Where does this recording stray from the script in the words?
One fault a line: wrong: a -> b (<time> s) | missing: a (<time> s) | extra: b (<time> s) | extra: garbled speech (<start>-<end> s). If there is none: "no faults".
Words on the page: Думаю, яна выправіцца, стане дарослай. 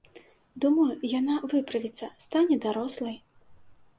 no faults